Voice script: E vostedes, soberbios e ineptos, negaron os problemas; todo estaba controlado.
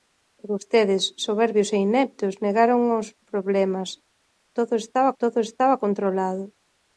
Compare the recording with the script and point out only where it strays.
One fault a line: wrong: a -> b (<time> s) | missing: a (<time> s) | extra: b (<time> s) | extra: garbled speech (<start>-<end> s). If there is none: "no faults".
extra: todo estaba (5.2 s)